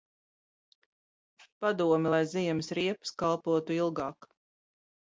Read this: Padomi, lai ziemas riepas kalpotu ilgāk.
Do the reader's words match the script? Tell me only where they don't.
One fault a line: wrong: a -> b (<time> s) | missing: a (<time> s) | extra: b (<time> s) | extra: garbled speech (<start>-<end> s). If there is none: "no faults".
no faults